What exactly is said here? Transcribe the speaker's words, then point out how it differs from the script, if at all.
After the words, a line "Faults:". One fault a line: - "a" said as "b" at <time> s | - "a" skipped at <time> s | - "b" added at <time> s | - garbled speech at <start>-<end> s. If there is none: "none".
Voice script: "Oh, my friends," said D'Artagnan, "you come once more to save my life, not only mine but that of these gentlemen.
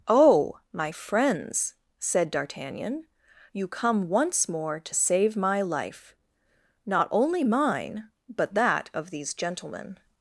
"Oh, my friends," said D'Artagnan, "you come once more to save my life, not only mine but that of these gentlemen.
Faults:
none